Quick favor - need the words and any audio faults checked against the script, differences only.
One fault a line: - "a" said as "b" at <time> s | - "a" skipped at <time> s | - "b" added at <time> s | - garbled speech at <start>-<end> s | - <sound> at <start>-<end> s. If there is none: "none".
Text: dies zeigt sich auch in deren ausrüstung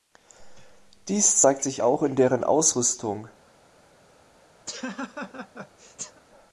- laugh at 4.7-6.2 s